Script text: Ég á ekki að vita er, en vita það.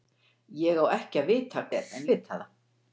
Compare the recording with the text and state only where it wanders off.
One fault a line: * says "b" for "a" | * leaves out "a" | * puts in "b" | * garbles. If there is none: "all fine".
all fine